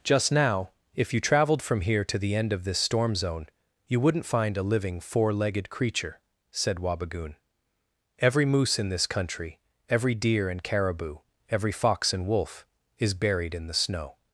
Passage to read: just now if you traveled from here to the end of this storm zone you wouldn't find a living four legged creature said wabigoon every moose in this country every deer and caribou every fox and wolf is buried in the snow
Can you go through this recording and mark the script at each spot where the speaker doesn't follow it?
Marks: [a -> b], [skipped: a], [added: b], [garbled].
just now if you traveled from here to the end of this storm zone you wouldn't find a living four legged creature said wabigoon every moose in this country every deer and caribou every fox and wolf is buried in the snow